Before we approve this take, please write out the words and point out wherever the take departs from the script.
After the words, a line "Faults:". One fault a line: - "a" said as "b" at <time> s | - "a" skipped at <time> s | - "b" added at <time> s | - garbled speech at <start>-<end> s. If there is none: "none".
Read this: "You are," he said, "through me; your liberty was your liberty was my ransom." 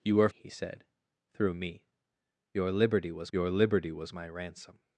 "You are," he said, "through me; your liberty was your liberty was my ransom."
Faults:
none